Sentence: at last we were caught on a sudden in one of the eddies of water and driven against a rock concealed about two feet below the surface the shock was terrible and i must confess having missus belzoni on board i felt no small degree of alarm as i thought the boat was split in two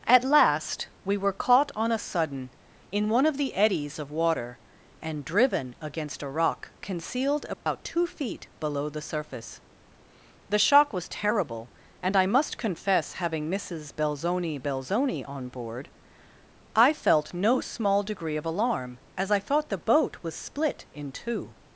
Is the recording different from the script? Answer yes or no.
yes